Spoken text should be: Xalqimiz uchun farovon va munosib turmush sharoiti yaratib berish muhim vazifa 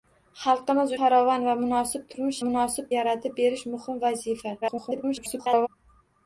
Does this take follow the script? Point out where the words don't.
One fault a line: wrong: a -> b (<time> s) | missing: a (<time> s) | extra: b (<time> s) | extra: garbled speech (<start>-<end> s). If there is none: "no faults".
missing: uchun (0.9 s)
wrong: sharoiti -> munosib (2.5 s)
extra: garbled speech (4.6-5.7 s)